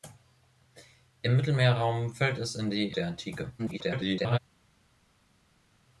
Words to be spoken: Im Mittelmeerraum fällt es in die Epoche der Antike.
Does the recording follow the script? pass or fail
fail